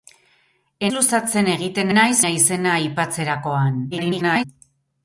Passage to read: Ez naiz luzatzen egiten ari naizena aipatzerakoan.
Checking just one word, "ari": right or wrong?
wrong